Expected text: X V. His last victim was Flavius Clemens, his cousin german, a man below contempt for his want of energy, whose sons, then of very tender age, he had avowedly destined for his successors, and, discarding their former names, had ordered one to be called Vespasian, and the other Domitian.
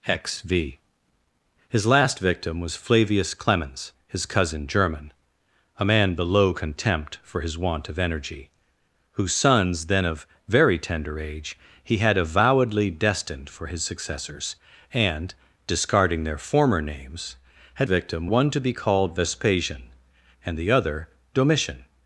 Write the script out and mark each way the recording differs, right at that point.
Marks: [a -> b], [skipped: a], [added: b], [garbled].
X V. His last victim was Flavius Clemens, his cousin german, a man below contempt for his want of energy, whose sons, then of very tender age, he had avowedly destined for his successors, and, discarding their former names, had [ordered -> victim] one to be called Vespasian, and the other Domitian.